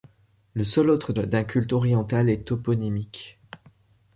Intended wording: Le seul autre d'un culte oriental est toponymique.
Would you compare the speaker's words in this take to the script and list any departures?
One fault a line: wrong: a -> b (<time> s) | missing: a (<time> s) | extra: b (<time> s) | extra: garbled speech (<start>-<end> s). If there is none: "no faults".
no faults